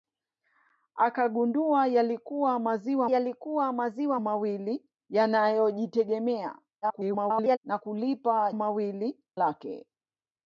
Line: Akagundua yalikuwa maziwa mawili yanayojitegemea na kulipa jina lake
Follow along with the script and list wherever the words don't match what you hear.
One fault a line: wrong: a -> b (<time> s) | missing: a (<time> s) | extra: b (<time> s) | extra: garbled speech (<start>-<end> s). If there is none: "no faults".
extra: yalikuwa maziwa (3.0 s)
extra: garbled speech (6.8-7.6 s)
wrong: jina -> mawili (8.5 s)